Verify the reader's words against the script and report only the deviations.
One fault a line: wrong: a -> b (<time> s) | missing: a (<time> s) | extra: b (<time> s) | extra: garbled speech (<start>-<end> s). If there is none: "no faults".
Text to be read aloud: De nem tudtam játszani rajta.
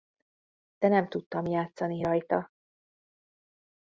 no faults